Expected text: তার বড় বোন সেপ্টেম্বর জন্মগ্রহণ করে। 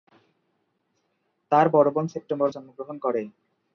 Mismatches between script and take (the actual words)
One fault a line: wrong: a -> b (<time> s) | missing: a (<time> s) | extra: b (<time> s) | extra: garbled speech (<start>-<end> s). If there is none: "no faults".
no faults